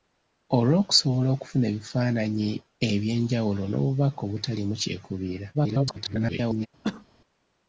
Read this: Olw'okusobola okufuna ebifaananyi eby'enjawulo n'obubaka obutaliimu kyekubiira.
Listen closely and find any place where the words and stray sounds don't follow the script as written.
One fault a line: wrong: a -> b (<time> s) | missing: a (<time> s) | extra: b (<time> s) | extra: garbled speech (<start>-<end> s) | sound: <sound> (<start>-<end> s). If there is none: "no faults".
extra: garbled speech (5.5-6.7 s)
sound: cough (6.8-7.1 s)